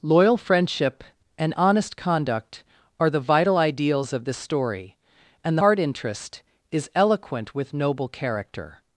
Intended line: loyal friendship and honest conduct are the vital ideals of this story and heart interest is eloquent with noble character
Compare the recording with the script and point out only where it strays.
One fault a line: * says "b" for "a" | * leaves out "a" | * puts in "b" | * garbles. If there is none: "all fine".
all fine